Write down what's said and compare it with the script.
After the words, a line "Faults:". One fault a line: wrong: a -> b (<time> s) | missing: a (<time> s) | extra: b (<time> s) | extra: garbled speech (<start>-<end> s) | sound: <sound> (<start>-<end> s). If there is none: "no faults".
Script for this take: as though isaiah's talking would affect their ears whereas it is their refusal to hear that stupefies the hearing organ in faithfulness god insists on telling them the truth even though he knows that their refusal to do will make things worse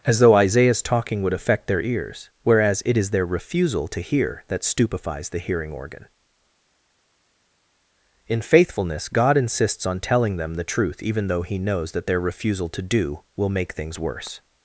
as though isaiah's talking would affect their ears whereas it is their refusal to hear that stupefies the hearing organ in faithfulness god insists on telling them the truth even though he knows that their refusal to do will make things worse
Faults:
no faults